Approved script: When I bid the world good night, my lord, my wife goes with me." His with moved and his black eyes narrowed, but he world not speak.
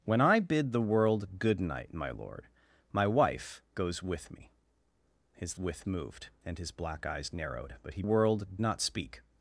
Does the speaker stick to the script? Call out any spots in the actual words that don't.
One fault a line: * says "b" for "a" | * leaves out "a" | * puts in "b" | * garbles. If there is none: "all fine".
all fine